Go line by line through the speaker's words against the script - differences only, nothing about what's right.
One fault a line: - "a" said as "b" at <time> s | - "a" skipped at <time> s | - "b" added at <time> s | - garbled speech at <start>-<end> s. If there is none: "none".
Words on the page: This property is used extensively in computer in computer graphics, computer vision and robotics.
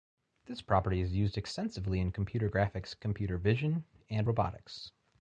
- "in computer" skipped at 2.5 s